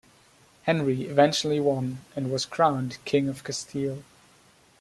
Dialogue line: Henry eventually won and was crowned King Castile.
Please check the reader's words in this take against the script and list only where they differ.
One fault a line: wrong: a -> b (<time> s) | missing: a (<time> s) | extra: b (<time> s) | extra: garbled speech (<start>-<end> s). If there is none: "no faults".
extra: of (3.3 s)